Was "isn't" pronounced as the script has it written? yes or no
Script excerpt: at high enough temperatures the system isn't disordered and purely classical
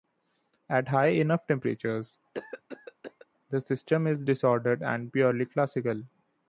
no